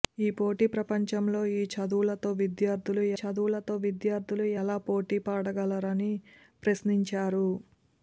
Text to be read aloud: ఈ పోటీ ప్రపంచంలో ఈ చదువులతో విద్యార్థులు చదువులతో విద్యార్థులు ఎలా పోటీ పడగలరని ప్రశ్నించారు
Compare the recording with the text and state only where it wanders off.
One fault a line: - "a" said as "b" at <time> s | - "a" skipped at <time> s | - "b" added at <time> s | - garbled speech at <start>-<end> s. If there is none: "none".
none